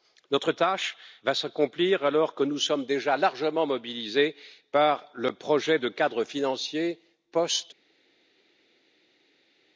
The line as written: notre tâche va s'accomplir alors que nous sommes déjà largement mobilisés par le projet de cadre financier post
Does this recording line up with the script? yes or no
yes